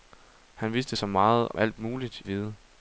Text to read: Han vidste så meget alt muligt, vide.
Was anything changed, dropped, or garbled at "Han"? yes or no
no